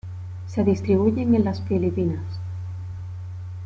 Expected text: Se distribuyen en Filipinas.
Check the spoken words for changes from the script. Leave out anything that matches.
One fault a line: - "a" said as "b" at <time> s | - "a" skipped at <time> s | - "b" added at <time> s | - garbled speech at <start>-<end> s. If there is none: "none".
- "las" added at 1.4 s